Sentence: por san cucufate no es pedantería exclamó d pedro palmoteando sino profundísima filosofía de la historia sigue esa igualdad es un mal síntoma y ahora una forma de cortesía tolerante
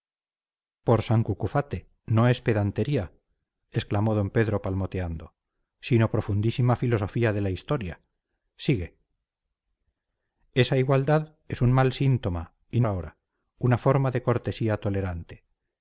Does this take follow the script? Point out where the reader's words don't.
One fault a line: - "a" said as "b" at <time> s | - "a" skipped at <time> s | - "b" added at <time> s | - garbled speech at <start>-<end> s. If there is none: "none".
none